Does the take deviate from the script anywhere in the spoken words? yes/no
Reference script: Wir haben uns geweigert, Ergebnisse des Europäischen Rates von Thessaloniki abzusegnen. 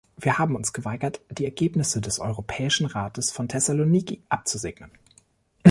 yes